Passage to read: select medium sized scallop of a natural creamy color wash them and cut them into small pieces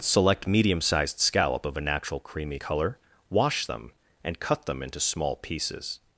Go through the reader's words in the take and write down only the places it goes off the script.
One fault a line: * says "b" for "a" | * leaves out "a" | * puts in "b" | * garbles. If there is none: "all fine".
all fine